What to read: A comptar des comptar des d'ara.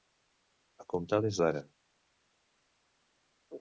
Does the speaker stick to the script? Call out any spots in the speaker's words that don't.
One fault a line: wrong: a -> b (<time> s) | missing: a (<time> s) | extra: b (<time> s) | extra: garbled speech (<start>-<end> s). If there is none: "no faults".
missing: comptar des (1.4 s)